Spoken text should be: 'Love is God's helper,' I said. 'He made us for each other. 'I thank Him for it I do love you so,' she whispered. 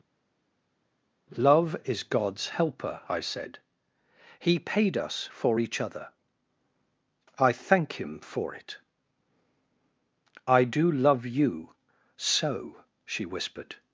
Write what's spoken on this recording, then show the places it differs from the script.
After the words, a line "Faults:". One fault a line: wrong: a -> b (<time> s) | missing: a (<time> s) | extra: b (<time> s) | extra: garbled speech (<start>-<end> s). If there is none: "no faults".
'Love is God's helper,' I said. 'He paid us for each other. 'I thank Him for it I do love you so,' she whispered.
Faults:
wrong: made -> paid (4.6 s)